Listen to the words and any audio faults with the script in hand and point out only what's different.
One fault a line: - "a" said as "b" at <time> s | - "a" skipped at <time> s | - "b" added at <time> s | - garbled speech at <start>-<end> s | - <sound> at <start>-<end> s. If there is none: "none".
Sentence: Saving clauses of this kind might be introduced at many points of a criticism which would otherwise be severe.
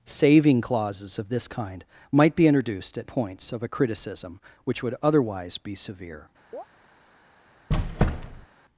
- "many" skipped at 3.1 s
- chirp at 6.5-6.7 s
- squeak at 7.7-8.5 s